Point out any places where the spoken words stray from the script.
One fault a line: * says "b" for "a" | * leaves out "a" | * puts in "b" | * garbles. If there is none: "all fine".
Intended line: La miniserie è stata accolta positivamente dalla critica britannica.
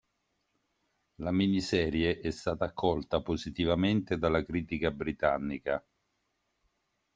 all fine